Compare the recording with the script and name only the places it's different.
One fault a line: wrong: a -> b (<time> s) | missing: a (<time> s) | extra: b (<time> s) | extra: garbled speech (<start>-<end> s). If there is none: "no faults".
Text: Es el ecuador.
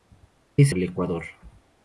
no faults